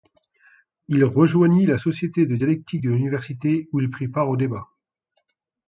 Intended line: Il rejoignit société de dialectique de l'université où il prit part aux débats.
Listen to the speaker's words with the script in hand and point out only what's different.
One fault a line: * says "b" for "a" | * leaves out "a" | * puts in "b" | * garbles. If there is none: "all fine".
* puts in "la"